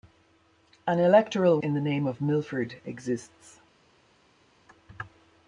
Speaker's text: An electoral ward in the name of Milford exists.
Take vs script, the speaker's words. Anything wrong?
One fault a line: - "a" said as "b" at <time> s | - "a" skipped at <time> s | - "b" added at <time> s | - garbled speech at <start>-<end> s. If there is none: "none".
- "ward" skipped at 1.6 s